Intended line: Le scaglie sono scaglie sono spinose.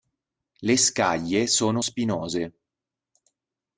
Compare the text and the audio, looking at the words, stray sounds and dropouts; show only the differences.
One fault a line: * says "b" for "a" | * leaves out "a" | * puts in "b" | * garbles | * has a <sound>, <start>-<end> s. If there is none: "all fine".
* leaves out "scaglie sono"